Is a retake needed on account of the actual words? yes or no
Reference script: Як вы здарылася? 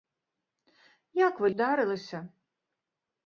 no